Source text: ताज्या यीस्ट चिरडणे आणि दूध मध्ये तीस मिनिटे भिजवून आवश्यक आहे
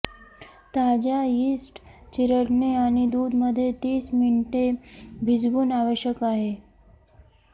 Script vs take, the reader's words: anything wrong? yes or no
no